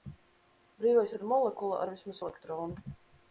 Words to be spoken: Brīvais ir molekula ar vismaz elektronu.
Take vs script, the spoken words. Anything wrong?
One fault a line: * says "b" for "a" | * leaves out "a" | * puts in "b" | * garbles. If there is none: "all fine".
all fine